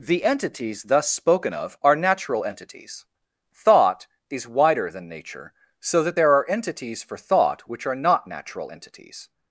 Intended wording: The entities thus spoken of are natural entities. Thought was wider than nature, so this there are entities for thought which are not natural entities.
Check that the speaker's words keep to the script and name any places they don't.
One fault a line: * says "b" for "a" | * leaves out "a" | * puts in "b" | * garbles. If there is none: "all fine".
* says "is" for "was"
* says "that" for "this"